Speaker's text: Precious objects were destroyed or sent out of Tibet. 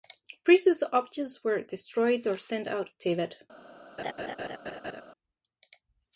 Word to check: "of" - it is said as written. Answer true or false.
false